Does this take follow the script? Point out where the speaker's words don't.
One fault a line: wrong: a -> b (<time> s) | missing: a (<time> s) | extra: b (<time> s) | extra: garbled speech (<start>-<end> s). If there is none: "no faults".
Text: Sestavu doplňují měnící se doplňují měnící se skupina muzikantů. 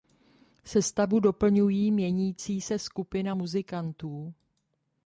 missing: doplňují měnící se (2.8 s)